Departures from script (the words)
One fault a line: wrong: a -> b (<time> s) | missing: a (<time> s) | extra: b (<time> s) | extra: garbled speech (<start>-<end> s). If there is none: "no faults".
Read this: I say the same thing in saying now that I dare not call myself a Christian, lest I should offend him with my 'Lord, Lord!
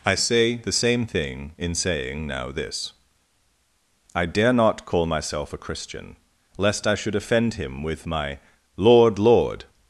wrong: that -> this (2.5 s)